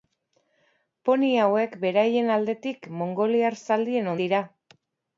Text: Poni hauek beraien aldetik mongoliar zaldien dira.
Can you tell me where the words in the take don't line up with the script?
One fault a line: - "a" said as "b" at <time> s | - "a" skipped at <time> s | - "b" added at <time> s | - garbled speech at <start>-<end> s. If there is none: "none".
none